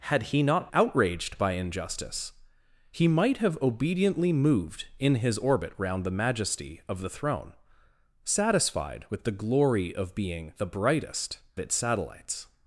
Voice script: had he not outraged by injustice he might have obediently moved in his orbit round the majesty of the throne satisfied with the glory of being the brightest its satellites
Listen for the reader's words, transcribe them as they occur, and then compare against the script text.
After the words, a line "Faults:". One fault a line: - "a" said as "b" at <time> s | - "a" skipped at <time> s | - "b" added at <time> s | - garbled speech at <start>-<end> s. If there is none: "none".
had he not outraged by injustice he might have obediently moved in his orbit round the majesty of the throne satisfied with the glory of being the brightest its satellites
Faults:
none